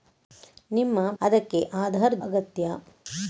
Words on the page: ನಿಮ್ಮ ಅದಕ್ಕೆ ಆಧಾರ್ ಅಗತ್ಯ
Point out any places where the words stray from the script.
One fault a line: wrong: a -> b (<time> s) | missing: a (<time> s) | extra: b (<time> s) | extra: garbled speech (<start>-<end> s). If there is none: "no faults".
no faults